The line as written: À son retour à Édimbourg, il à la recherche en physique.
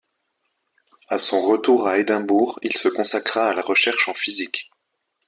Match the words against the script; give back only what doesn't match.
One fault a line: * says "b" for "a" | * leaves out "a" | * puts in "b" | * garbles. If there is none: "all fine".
* puts in "se consacra"